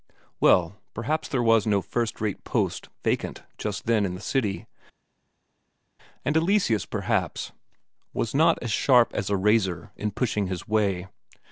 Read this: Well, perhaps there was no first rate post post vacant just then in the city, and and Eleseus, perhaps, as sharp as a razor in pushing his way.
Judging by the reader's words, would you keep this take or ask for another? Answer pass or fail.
fail